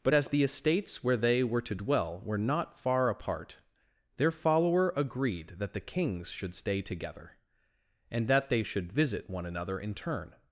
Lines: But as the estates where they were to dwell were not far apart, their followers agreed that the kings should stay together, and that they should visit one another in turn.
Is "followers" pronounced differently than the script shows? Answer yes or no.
yes